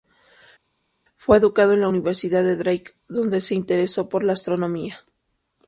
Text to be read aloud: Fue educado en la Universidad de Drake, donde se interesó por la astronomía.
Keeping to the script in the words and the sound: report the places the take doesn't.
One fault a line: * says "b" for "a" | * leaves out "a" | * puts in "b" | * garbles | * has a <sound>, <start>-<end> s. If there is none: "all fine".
all fine